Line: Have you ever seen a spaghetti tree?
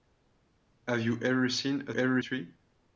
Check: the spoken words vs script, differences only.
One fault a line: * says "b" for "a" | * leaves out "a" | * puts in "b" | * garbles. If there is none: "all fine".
* says "ever" for "spaghetti"